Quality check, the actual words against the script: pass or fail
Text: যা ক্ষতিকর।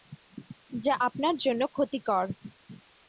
fail